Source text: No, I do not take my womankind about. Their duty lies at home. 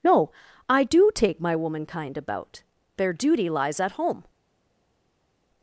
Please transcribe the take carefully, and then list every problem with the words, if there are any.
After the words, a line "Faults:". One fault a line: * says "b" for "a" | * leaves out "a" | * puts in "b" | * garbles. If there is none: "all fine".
No, I do take my womankind about. Their duty lies at home.
Faults:
* leaves out "not"